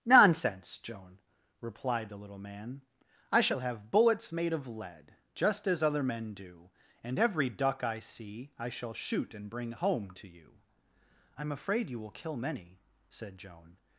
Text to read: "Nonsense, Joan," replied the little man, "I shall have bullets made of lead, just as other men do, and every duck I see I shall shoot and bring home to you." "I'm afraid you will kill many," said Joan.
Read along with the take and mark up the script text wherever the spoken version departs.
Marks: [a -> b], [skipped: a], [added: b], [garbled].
"Nonsense, Joan," replied the little man, "I shall have bullets made of lead, just as other men do, and every duck I see I shall shoot and bring home to you." "I'm afraid you will kill many," said Joan.